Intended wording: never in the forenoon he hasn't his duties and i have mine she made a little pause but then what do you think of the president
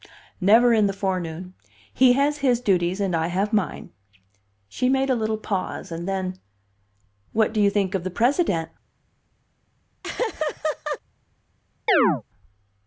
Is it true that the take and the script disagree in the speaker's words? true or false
true